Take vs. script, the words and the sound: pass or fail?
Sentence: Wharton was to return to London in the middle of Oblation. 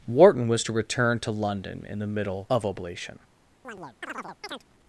fail